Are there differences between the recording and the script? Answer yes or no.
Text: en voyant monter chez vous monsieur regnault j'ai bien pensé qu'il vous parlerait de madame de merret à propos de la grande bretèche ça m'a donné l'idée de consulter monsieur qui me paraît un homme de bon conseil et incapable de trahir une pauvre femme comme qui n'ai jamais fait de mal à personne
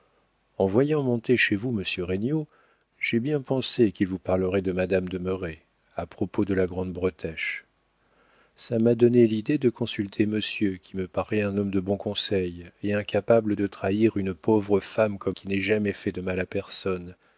no